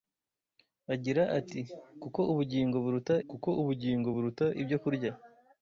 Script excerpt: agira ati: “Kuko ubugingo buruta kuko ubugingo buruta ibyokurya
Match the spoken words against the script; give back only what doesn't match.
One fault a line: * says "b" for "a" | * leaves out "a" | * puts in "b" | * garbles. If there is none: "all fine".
all fine